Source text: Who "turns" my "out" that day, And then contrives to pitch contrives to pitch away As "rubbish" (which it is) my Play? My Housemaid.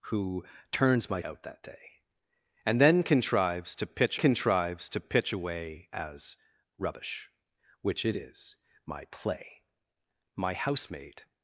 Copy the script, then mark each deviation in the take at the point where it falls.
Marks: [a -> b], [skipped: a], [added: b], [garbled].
Who "turns" my "out" that day, And then contrives to pitch contrives to pitch away As "rubbish" (which it is) my Play? My Housemaid.